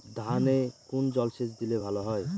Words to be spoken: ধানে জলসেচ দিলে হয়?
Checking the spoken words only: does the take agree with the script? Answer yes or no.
no